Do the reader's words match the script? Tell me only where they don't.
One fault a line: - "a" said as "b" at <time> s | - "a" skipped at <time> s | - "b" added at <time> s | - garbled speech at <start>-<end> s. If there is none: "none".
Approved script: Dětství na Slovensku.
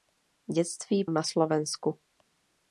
none